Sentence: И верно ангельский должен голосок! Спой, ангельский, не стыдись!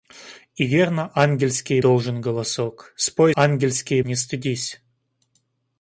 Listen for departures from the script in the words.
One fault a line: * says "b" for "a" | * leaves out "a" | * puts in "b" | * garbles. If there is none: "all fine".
all fine